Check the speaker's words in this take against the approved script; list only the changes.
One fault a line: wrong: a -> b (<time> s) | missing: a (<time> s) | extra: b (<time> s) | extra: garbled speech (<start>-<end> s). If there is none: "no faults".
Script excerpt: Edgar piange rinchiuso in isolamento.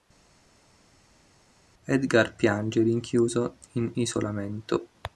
no faults